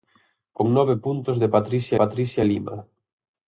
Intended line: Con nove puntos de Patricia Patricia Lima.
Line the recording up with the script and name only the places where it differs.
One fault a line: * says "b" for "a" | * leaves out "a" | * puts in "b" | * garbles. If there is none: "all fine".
all fine